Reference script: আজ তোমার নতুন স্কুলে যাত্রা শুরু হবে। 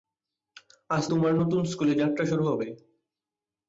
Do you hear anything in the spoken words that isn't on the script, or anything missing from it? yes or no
no